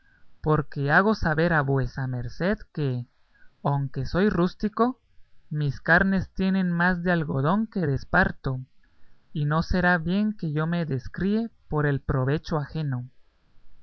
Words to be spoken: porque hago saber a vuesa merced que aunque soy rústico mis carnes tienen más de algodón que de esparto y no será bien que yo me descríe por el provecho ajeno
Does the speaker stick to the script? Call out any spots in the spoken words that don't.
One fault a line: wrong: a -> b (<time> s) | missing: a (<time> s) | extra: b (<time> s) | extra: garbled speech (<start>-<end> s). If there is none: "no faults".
no faults